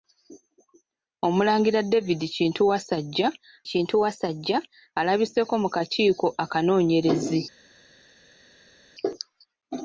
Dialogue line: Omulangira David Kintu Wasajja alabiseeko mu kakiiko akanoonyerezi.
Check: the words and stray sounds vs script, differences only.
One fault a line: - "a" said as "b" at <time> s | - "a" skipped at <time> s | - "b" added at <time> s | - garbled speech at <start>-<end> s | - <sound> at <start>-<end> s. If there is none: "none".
- "Kintu Wasajja" added at 3.7 s